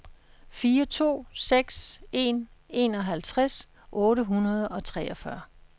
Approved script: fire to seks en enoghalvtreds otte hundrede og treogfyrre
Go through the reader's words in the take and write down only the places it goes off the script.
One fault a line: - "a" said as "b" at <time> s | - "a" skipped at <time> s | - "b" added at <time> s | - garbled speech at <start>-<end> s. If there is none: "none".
none